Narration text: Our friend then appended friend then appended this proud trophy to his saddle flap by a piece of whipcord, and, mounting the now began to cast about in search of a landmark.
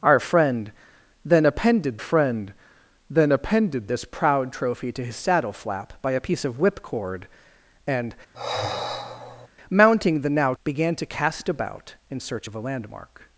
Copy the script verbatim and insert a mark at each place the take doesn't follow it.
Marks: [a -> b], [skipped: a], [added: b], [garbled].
Our friend then appended friend then appended this proud trophy to his saddle flap by a piece of whipcord, and, mounting the now began to cast about in search of a landmark.